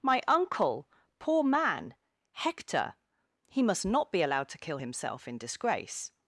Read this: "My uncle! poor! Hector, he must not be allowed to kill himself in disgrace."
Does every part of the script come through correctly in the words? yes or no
no